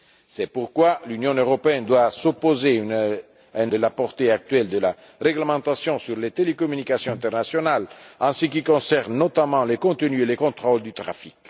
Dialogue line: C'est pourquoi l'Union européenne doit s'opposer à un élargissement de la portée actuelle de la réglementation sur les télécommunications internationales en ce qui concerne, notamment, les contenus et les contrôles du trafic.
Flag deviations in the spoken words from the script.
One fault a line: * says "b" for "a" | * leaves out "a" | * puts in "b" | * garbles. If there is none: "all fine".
* leaves out "élargissement"